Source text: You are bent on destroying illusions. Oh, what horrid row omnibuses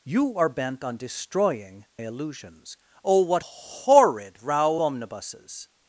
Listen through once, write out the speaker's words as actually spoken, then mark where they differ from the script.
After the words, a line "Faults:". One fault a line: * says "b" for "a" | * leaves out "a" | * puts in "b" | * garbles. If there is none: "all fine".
You are bent on destroying illusions. Oh, what horrid row omnibuses
Faults:
all fine